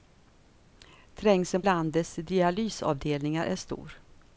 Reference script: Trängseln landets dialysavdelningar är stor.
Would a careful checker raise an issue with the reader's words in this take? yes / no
no